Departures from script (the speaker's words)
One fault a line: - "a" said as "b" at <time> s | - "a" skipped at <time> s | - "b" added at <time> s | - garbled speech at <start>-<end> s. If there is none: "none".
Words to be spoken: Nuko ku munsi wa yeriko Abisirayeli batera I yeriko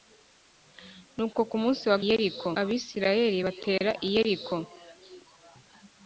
none